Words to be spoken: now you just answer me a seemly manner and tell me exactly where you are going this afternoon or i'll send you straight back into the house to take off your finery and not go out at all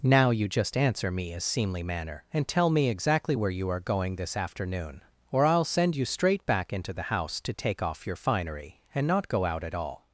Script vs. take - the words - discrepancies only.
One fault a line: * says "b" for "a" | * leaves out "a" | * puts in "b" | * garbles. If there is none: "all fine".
all fine